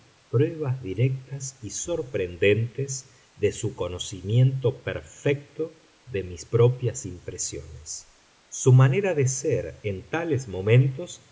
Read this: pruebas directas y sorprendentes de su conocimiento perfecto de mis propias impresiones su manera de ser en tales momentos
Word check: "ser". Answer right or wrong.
right